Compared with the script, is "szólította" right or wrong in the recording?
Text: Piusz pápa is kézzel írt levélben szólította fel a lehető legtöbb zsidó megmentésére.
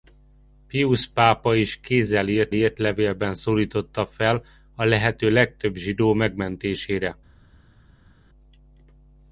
right